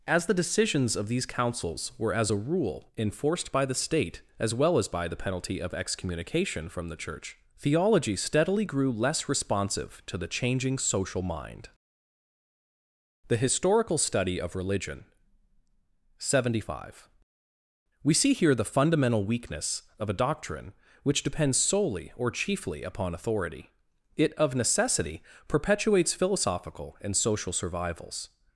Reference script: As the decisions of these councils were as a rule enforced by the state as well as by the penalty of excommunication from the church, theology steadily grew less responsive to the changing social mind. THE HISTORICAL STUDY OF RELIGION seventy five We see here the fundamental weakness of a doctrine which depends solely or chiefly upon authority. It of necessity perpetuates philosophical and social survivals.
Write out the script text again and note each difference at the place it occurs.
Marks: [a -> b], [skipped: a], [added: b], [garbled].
As the decisions of these councils were as a rule enforced by the state as well as by the penalty of excommunication from the church, theology steadily grew less responsive to the changing social mind. THE HISTORICAL STUDY OF RELIGION seventy five We see here the fundamental weakness of a doctrine which depends solely or chiefly upon authority. It of necessity perpetuates philosophical and social survivals.